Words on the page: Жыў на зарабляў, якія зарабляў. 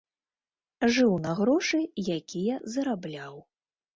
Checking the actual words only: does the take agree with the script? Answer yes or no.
no